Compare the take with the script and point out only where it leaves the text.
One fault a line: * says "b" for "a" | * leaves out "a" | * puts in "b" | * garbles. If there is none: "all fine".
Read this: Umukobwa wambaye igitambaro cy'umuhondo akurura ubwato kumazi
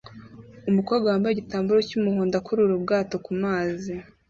all fine